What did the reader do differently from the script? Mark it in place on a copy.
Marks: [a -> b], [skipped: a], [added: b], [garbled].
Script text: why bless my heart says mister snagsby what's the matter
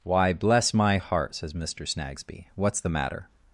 why bless my heart says mister snagsby what's the matter